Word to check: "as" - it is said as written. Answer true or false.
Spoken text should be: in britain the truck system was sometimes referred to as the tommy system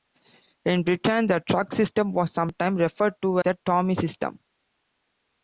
false